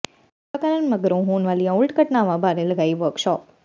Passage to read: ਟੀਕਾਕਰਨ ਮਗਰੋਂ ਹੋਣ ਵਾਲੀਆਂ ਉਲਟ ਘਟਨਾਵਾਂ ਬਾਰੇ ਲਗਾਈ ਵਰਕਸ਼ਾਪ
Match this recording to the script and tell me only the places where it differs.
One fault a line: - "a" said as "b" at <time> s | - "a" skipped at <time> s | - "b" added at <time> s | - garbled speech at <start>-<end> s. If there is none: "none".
none